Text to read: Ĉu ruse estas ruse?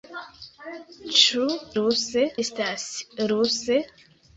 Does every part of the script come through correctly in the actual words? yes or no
yes